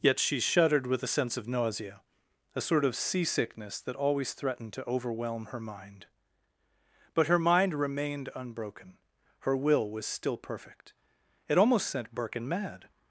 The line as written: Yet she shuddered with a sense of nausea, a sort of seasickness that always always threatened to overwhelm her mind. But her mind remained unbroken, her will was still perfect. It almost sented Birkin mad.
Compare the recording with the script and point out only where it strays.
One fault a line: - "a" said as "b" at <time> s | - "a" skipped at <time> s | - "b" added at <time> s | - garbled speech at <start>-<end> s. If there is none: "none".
- "always" skipped at 4.3 s
- "sented" said as "sent" at 11.9 s